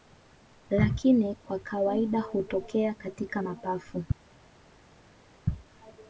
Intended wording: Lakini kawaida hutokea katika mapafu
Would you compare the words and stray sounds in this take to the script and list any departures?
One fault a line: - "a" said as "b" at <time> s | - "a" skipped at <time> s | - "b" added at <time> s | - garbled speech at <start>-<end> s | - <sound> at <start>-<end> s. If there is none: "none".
- "kwa" added at 1.4 s